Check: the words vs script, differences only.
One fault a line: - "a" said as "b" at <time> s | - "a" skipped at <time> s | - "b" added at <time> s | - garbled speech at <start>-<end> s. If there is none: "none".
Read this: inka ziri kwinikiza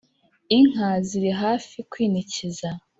- "hafi" added at 1.4 s